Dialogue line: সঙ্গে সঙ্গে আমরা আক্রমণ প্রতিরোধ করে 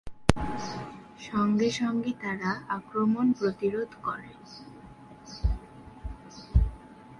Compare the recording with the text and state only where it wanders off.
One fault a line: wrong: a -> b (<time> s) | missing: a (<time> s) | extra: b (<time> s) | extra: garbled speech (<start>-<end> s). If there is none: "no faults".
wrong: আমরা -> তারা (2.2 s)